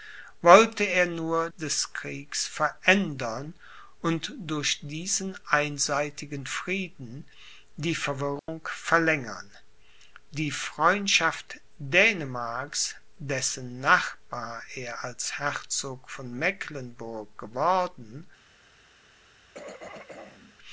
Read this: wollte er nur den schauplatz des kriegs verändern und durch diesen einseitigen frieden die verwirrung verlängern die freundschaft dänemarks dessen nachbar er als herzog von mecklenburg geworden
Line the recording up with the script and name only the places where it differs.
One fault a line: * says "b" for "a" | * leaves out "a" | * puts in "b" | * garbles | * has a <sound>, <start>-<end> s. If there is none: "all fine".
* leaves out "den schauplatz"
* has a dropout, 8.4-8.5 s
* has a throat clearing, 19.5-20.6 s